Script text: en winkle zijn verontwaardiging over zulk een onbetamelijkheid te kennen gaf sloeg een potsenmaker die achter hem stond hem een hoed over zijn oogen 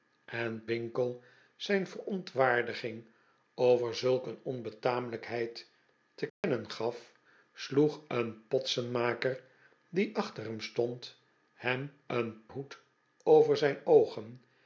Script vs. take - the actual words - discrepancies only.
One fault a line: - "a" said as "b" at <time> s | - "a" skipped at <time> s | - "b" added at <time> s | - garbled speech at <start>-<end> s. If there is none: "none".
none